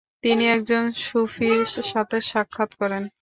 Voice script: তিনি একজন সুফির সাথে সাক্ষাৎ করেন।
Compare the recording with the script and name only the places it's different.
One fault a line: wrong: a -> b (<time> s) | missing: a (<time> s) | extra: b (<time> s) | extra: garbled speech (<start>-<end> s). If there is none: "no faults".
no faults